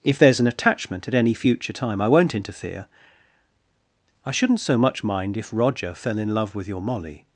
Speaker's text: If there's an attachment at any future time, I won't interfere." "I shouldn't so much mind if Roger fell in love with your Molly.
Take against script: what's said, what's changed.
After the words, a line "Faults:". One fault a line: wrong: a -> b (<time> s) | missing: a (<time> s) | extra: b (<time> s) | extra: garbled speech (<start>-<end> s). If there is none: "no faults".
If there's an attachment at any future time, I won't interfere." "I shouldn't so much mind if Roger fell in love with your Molly.
Faults:
no faults